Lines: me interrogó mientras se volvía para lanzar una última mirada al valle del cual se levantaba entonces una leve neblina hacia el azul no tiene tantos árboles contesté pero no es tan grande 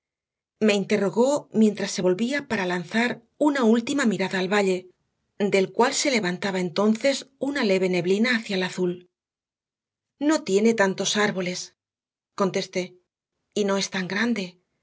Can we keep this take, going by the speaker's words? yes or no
no